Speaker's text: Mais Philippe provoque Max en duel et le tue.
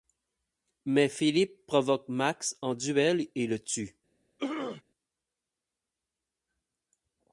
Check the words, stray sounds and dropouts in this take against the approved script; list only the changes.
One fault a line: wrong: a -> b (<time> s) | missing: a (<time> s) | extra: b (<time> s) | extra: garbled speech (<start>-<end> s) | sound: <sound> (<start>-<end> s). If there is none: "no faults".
sound: throat clearing (4.4-4.8 s)